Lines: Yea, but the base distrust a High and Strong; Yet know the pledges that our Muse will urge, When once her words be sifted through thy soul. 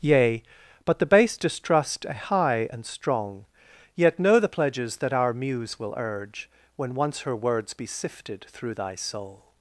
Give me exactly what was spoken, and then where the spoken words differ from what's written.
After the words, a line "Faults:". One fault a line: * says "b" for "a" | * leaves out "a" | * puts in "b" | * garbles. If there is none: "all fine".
Yea, but the base distrust a High and Strong; Yet know the pledges that our Muse will urge, When once her words be sifted through thy soul.
Faults:
all fine